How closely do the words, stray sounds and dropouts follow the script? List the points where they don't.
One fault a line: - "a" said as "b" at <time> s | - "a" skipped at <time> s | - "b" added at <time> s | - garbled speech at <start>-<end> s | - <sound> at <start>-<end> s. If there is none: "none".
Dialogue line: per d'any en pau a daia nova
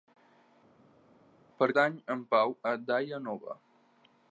none